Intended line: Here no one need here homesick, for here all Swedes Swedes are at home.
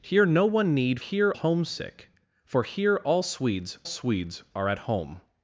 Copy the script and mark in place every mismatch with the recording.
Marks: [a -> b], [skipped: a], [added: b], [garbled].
Here no one need here homesick, for here all Swedes Swedes are at home.